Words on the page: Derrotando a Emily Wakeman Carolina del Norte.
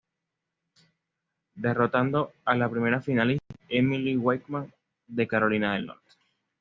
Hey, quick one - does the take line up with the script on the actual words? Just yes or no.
no